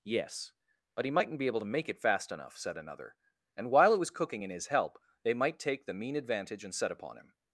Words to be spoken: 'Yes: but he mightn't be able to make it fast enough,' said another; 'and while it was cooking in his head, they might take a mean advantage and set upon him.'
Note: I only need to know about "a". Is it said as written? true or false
false